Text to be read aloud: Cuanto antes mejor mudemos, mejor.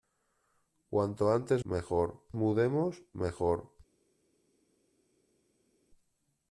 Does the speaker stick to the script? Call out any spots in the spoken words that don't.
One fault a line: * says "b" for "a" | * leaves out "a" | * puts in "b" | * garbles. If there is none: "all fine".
all fine